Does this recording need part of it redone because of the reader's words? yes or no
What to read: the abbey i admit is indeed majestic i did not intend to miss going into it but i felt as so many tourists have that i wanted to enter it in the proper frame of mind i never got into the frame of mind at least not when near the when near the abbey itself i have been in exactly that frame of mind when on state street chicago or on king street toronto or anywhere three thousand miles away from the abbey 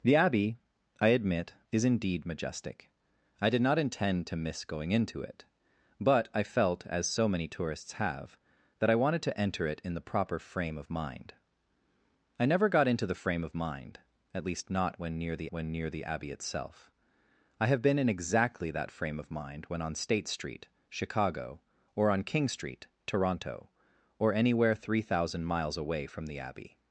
no